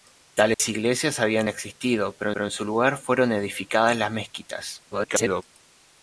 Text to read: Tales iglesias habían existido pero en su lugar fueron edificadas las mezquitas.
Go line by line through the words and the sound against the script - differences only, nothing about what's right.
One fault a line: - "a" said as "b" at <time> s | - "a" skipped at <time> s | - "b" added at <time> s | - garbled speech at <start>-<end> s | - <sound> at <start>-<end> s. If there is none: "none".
- dropout at 0.5-0.6 s
- "pero" added at 2.3 s
- garbled speech at 4.9-5.4 s